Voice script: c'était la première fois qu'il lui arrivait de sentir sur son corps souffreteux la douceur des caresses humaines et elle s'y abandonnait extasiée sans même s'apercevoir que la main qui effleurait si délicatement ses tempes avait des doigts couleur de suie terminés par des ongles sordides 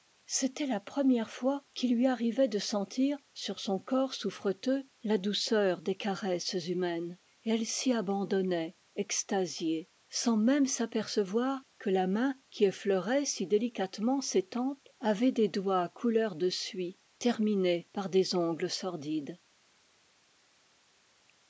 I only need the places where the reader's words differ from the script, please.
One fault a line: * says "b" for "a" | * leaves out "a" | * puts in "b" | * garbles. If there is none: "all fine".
all fine